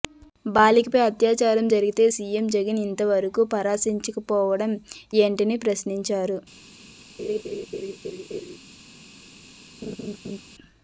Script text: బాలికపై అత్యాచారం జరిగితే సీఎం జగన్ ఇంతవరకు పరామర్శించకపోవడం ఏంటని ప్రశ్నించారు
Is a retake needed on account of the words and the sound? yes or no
yes